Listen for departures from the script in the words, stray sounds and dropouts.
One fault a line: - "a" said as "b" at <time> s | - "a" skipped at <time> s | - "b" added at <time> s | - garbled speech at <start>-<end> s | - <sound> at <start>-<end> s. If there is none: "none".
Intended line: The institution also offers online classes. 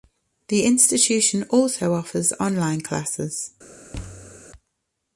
- thud at 3.9-4.5 s